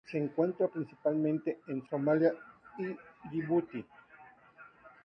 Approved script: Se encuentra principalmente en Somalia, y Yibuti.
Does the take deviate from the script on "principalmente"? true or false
false